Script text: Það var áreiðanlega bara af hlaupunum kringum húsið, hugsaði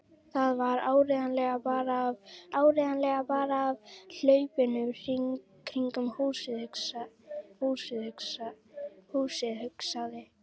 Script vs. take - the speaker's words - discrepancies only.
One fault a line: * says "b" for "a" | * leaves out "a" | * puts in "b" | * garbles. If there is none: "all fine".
* puts in "áreiðanlega bara af"
* puts in "húsið"